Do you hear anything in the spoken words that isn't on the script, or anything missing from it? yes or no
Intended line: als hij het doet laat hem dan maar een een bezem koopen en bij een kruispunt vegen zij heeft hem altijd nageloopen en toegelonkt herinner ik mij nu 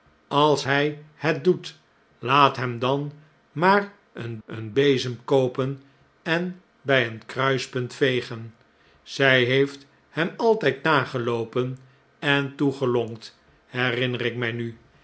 no